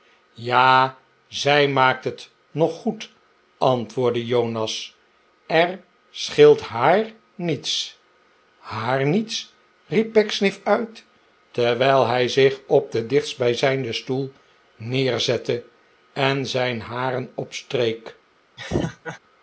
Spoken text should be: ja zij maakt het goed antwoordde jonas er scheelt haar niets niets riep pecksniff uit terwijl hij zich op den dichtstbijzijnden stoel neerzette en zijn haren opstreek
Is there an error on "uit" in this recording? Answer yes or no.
no